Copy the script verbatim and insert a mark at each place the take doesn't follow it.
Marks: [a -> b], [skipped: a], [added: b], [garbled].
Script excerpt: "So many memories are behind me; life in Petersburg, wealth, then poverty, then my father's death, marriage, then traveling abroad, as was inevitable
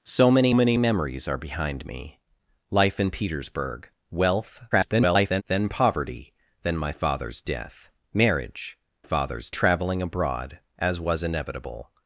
"So many [added: many] memories are behind me; life in Petersburg, wealth, [garbled] then poverty, then my father's death, marriage, [then -> father's] traveling abroad, as was inevitable